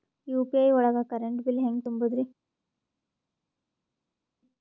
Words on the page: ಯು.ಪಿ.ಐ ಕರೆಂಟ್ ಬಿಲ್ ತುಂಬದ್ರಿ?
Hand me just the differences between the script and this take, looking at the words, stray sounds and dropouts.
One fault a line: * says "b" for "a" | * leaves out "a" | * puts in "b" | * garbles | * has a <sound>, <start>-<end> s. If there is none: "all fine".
* puts in "ಒಳಗ"
* puts in "ಹೆಂಗ್"